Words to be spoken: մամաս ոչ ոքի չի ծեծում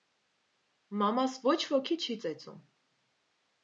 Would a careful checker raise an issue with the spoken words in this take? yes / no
no